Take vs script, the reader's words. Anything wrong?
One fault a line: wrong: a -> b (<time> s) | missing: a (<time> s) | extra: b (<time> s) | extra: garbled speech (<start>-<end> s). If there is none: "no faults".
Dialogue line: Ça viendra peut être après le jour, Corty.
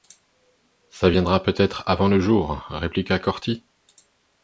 wrong: après -> avant (1.9 s)
extra: répliqua (2.7 s)